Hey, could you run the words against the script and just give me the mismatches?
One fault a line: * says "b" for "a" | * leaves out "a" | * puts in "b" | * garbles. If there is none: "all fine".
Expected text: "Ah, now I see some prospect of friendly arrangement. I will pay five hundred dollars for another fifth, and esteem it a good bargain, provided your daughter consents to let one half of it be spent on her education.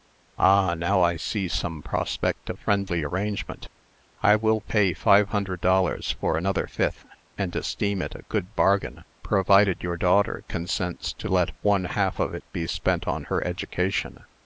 all fine